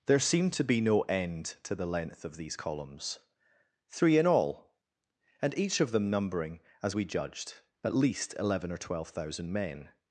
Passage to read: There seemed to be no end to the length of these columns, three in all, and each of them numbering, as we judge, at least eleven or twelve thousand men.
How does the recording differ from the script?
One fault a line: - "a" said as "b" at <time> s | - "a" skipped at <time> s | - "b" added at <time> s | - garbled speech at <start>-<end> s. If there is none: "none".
- "judge" said as "judged" at 7.0 s